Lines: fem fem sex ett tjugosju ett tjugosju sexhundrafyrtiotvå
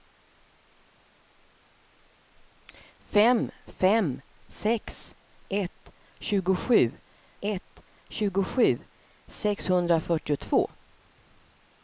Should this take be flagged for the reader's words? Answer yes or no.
no